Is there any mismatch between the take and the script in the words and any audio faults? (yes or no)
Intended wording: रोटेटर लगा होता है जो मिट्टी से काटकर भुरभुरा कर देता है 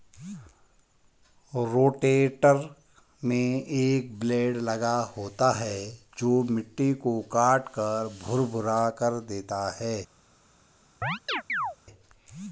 yes